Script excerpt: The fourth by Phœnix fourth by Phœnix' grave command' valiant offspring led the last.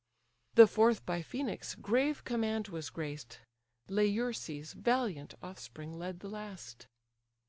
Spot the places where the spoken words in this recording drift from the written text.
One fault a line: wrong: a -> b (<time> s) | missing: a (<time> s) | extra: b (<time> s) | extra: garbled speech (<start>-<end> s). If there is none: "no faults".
wrong: fourth by Phœnix grave command -> grave command was graced Laerces (1.8 s)